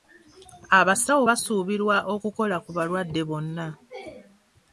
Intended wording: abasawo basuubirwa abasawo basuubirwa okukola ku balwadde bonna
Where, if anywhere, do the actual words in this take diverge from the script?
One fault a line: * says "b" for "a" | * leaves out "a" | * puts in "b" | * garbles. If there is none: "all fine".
* leaves out "abasawo basuubirwa"